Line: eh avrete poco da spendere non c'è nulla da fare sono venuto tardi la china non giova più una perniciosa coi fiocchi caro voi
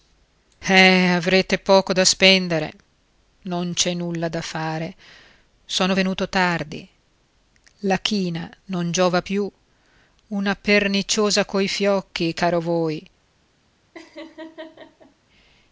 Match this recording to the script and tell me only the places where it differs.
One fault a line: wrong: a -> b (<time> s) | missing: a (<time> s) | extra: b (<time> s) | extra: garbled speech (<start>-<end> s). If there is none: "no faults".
no faults